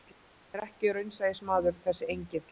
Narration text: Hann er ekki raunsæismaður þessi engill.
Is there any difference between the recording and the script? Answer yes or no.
no